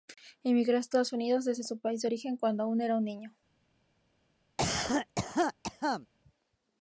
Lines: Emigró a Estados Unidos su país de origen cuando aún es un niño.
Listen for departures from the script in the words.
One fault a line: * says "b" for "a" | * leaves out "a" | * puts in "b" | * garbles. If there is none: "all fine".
* puts in "desde"
* says "era" for "es"